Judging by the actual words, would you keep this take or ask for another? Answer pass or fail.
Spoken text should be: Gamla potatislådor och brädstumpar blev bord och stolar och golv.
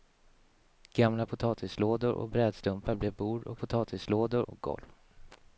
fail